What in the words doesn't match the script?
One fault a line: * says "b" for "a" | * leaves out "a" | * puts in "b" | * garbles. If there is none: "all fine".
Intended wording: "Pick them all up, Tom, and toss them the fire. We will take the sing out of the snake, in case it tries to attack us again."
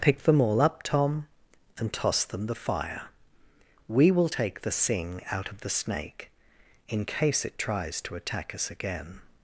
all fine